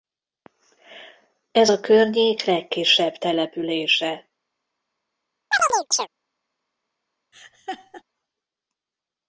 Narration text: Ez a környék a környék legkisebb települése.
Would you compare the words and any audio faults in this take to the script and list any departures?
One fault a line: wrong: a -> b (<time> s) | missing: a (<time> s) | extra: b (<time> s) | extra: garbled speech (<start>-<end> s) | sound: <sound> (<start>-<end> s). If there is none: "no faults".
missing: a környék (2.4 s)
sound: chirp (5.5-6.1 s)
sound: laugh (7.3-8.0 s)